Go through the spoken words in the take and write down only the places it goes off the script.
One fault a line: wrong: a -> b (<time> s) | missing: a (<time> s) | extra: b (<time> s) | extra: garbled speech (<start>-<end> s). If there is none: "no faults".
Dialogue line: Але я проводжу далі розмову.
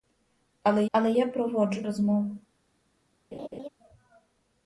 extra: але (0.9 s)
missing: далі (1.8 s)